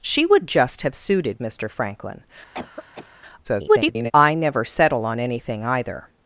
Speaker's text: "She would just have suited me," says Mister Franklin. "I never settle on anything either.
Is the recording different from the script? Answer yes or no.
yes